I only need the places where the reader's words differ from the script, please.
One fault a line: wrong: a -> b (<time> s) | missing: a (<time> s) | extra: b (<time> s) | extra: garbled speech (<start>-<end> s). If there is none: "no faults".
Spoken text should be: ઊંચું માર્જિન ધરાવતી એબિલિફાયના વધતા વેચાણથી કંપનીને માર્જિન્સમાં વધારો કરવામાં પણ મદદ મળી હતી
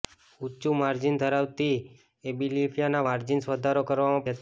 missing: વધતા વેચાણથી કંપનીને (3.0 s)
missing: પણ મદદ મળી (4.3 s)